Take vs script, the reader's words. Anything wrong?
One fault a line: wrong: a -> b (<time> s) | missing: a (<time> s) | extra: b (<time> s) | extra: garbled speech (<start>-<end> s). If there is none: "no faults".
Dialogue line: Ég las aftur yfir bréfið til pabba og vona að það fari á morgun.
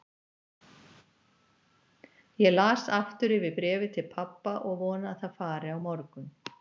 no faults